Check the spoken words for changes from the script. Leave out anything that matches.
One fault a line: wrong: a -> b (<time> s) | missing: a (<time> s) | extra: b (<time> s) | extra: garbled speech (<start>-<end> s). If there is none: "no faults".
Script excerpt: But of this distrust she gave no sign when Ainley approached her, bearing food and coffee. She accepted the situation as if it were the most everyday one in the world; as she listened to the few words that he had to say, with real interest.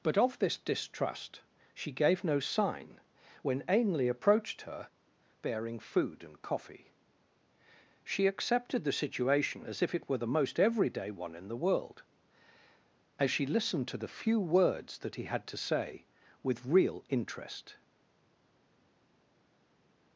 no faults